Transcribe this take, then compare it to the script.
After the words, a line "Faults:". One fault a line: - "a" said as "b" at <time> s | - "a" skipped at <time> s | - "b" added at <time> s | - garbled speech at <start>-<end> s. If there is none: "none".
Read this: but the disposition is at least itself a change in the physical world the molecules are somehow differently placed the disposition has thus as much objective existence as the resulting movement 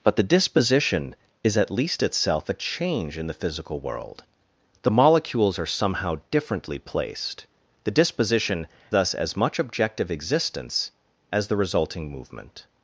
but the disposition is at least itself a change in the physical world the molecules are somehow differently placed the disposition thus as much objective existence as the resulting movement
Faults:
- "has" skipped at 8.7 s